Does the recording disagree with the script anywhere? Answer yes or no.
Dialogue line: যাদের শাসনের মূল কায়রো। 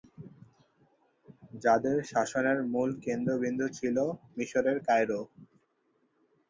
yes